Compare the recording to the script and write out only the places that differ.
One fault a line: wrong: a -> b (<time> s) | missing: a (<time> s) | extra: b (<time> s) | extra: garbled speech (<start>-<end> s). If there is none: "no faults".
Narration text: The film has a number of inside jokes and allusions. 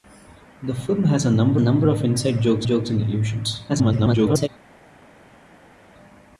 extra: number (1.6 s)
extra: jokes (2.7 s)
extra: garbled speech (3.7-4.5 s)